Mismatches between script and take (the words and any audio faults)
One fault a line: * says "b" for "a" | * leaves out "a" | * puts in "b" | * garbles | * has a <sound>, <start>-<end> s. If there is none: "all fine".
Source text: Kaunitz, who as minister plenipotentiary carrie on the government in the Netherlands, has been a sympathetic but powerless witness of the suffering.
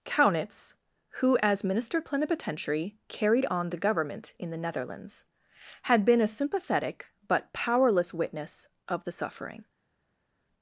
* says "carried" for "carrie"
* says "had" for "has"